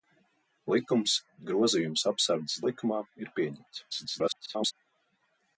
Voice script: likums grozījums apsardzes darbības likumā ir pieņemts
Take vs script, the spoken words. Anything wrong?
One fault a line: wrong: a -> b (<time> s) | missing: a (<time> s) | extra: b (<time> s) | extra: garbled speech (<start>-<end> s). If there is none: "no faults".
missing: darbības (2.6 s)
extra: garbled speech (3.9-4.7 s)